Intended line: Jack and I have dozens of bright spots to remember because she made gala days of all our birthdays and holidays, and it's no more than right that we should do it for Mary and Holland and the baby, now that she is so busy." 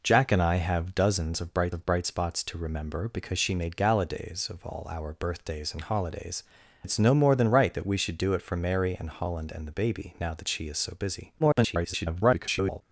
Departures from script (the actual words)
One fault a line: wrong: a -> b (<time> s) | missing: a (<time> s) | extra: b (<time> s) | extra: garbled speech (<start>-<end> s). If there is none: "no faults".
extra: of bright (1.7 s)
missing: and (6.4 s)
extra: garbled speech (11.4-12.8 s)